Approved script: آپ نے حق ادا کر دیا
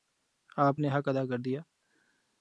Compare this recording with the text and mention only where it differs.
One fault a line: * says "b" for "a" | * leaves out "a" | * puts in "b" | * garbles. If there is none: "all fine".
all fine